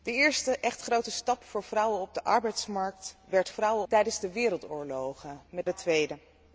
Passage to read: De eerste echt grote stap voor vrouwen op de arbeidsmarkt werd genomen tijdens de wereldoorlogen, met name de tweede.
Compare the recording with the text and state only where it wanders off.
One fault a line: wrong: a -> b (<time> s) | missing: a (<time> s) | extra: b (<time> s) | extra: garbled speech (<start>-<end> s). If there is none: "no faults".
wrong: genomen -> vrouwen (3.5 s)
missing: name (5.7 s)